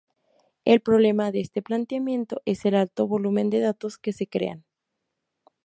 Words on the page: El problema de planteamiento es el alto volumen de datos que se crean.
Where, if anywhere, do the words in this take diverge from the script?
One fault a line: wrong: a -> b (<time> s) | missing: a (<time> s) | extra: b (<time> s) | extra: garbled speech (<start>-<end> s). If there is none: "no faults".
extra: este (1.4 s)